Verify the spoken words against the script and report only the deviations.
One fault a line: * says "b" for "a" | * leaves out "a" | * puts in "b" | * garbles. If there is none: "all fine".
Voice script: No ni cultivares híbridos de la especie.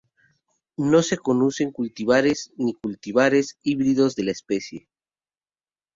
* puts in "se conocen cultivares"